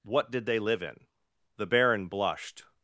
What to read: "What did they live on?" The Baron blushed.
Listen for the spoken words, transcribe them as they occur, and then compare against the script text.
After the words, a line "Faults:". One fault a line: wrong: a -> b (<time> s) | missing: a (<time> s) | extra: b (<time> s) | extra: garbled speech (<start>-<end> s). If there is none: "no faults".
"What did they live in?" The Baron blushed.
Faults:
wrong: on -> in (0.8 s)